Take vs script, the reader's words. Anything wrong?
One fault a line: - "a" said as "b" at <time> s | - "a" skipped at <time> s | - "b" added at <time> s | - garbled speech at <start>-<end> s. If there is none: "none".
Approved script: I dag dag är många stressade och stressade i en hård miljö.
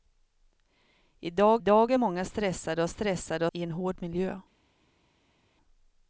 none